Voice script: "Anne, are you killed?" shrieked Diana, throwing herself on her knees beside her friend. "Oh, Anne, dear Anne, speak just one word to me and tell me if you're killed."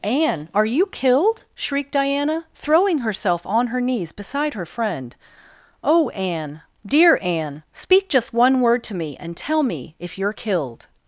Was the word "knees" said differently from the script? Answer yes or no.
no